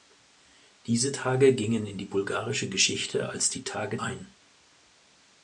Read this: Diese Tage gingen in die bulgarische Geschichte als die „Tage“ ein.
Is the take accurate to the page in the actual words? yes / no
yes